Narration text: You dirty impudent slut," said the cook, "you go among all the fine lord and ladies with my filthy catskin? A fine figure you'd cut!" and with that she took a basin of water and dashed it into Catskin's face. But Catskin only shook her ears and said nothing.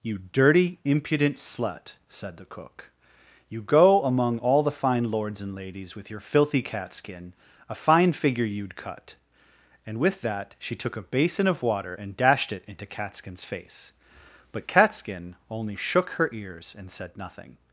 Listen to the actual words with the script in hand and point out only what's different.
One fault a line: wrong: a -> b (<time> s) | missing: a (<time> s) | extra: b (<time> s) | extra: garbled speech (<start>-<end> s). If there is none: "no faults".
wrong: lord -> lords (5.1 s)
wrong: my -> your (6.1 s)